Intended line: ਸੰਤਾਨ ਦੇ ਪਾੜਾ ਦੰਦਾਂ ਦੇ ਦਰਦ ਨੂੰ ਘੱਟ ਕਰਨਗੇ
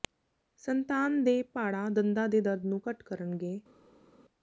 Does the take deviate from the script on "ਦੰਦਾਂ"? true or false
false